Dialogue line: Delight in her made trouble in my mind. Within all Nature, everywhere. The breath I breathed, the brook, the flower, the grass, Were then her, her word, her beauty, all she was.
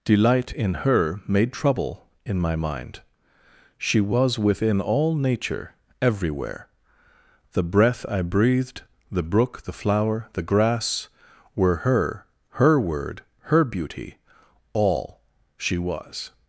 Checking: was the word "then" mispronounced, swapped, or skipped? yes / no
yes